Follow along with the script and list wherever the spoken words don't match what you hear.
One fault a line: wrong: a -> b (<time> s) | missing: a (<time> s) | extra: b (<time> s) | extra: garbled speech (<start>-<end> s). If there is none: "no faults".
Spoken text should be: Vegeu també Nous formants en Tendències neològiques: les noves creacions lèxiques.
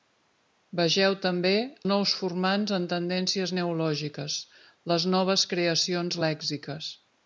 no faults